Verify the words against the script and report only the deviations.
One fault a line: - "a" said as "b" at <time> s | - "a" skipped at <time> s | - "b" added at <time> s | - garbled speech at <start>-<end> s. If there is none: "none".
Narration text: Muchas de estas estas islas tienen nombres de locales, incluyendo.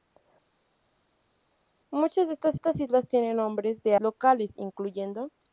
none